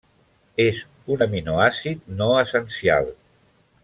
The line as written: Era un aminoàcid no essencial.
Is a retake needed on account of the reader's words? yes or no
yes